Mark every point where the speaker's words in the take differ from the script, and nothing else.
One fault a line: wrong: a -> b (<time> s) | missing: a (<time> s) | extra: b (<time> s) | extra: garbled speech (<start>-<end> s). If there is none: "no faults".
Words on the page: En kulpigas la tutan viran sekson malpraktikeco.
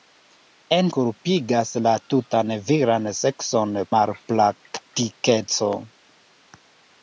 no faults